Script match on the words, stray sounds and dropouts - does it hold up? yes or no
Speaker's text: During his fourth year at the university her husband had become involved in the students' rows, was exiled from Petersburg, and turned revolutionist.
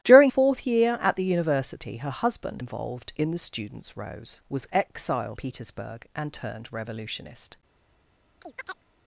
no